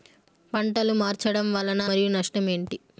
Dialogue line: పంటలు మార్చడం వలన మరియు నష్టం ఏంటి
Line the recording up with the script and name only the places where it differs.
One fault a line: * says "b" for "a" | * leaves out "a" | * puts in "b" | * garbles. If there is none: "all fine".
all fine